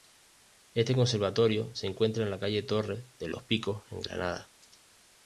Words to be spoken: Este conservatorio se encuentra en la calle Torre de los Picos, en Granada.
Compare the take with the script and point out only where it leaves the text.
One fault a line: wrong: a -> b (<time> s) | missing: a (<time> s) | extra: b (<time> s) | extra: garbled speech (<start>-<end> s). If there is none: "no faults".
no faults